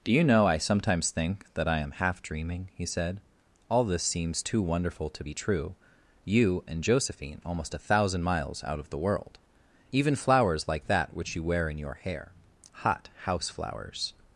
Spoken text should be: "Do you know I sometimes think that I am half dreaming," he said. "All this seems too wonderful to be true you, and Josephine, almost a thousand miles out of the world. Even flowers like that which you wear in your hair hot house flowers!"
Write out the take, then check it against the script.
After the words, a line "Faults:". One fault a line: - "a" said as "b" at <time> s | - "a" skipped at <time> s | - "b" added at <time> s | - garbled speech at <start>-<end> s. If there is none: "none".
"Do you know I sometimes think that I am half dreaming," he said. "All this seems too wonderful to be true you, and Josephine, almost a thousand miles out of the world. Even flowers like that which you wear in your hair hot house flowers!"
Faults:
none